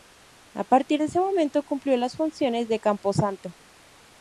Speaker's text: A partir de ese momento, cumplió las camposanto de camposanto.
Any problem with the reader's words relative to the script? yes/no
yes